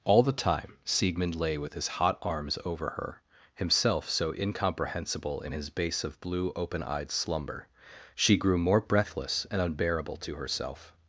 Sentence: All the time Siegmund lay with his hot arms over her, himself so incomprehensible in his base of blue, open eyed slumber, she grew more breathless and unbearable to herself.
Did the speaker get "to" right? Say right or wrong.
right